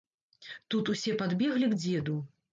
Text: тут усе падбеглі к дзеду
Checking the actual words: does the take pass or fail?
pass